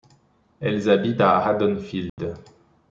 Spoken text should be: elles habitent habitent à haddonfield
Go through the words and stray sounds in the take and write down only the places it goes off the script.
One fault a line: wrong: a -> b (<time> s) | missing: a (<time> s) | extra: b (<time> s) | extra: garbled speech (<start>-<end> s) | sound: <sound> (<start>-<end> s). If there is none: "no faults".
missing: habitent (1.2 s)
sound: dropout (2.1-2.2 s)